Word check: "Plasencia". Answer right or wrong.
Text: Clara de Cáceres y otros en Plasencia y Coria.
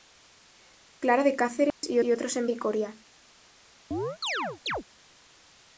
wrong